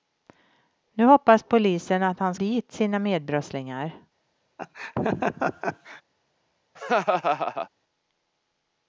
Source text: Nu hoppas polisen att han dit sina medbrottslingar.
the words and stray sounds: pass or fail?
fail